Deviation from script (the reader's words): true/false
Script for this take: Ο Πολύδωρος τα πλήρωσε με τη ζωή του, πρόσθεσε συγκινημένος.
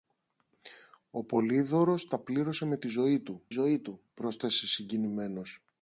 true